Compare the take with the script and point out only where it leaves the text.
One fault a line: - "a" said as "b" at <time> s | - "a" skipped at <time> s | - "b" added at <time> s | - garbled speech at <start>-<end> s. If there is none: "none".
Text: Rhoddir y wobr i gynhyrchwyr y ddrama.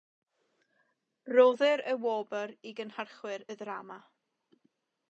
none